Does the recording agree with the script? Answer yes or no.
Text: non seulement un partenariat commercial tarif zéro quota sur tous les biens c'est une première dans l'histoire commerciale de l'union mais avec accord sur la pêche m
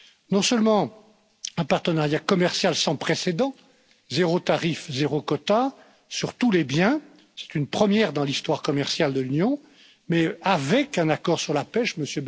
no